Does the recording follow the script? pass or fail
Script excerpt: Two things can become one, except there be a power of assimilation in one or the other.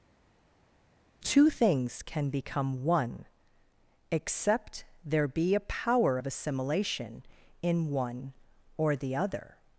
pass